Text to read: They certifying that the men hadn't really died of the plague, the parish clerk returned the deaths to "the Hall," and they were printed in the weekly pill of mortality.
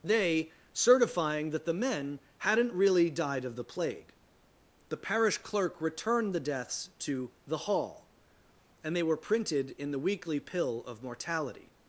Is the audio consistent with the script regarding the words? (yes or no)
yes